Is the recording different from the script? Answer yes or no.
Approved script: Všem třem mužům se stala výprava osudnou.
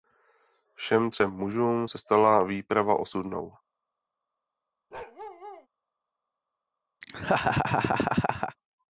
no